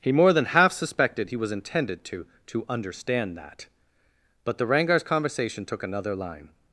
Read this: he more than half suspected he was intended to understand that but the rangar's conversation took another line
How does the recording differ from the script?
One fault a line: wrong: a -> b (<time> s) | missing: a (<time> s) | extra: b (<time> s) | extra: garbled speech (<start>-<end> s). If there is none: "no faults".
extra: to (2.5 s)